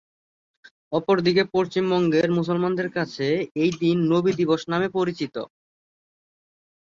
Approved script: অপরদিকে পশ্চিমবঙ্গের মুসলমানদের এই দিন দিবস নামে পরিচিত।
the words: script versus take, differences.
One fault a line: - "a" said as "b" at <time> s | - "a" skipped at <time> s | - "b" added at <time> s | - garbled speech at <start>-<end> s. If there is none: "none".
- "কাছে" added at 2.9 s
- "নবী" added at 4.1 s